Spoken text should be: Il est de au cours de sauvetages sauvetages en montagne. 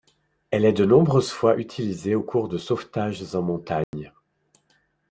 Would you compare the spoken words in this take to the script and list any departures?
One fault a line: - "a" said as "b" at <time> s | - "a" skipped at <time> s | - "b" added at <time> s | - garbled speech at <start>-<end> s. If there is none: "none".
- "Il" said as "Elle" at 0.5 s
- "nombreuses fois utilisée" added at 0.8 s
- "sauvetages" skipped at 3.3 s